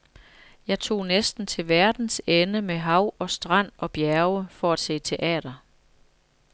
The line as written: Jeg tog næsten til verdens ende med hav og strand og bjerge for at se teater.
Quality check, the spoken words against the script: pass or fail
pass